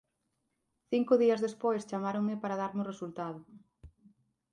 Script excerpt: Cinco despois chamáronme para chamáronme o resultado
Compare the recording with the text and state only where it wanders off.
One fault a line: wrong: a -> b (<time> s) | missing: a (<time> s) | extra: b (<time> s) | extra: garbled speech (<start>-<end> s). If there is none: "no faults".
extra: días (1.2 s)
wrong: chamáronme -> darme (2.6 s)